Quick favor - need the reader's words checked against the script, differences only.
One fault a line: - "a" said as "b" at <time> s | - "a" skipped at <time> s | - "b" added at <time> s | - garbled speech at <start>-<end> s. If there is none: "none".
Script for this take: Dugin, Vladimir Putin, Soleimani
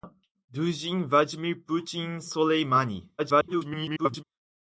- garbled speech at 3.2-4.2 s